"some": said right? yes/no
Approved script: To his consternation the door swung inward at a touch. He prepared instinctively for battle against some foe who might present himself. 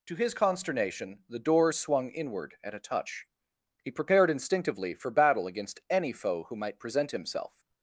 no